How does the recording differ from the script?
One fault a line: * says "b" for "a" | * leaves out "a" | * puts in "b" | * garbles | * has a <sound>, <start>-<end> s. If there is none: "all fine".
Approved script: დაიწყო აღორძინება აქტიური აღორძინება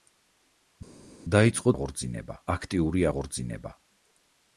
all fine